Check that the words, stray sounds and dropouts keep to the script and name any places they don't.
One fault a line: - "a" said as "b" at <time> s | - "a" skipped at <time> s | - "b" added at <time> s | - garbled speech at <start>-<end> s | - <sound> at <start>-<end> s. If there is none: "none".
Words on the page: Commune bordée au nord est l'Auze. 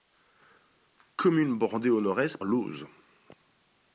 none